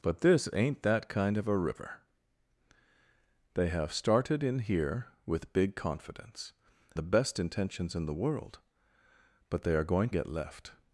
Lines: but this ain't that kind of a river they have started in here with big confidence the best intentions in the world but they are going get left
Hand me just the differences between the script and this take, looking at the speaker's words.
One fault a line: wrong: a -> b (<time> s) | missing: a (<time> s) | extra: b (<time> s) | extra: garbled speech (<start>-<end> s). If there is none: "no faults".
no faults